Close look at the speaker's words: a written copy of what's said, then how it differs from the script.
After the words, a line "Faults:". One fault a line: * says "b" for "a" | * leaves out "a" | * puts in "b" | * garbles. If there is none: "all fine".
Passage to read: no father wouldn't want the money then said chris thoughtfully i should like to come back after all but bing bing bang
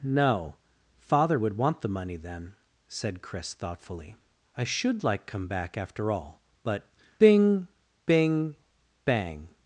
no father would want the money then said chris thoughtfully i should like come back after all but bing bing bang
Faults:
* says "would" for "wouldn't"
* leaves out "to"